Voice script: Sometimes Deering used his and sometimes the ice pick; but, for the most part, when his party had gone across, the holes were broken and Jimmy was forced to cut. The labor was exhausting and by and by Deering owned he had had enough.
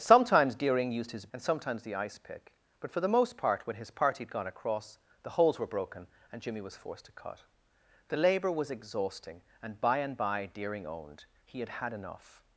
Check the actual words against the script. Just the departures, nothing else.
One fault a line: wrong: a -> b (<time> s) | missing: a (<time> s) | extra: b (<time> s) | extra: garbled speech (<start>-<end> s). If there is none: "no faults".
no faults